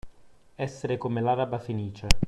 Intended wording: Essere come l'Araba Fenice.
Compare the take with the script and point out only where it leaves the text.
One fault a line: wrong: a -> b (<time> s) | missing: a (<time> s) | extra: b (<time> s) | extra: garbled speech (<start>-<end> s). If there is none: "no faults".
no faults